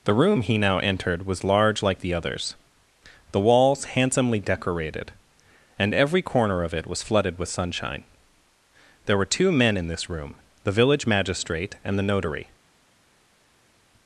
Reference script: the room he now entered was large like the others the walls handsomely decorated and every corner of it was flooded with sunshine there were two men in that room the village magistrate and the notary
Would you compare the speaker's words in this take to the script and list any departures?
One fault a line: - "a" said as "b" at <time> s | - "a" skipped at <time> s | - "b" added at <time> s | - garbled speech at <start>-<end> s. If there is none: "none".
- "that" said as "this" at 9.9 s